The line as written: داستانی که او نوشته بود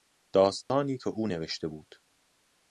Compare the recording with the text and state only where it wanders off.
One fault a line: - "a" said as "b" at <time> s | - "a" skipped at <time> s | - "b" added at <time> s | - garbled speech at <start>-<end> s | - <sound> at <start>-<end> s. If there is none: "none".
- dropout at 0.6-0.7 s